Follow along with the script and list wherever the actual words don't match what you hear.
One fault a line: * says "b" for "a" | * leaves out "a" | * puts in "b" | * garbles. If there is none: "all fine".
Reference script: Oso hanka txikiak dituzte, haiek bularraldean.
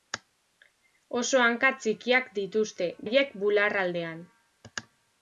all fine